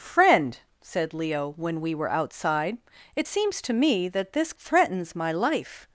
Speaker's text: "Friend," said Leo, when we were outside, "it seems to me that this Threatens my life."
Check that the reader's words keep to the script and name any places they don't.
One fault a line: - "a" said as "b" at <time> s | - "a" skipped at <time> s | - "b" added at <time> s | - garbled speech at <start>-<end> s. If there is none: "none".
none